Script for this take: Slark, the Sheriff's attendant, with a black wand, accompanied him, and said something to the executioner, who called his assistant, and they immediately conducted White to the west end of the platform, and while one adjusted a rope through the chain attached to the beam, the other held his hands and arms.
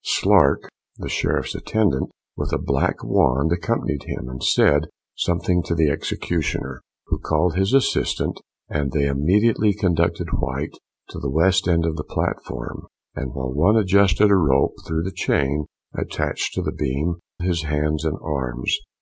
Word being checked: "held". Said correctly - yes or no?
no